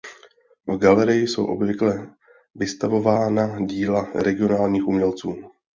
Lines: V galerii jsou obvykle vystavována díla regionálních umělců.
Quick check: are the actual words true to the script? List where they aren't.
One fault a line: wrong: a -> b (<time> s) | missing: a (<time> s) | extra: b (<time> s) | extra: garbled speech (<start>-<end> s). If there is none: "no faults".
no faults